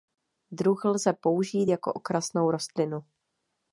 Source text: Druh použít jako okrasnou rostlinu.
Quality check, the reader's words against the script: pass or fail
fail